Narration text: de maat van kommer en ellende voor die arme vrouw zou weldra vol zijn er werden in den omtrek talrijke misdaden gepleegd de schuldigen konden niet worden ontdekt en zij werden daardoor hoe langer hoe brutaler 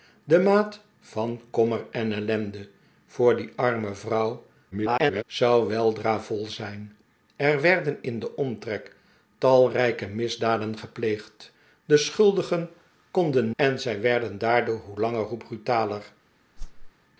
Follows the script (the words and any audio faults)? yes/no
no